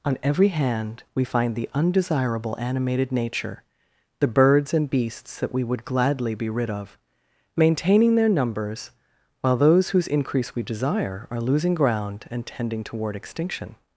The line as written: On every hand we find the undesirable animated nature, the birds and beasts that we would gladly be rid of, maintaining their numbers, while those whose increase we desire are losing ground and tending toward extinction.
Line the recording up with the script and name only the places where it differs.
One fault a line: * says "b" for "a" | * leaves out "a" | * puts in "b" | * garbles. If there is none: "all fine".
all fine